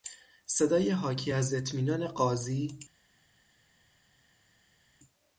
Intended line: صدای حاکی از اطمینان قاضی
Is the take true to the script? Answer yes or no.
yes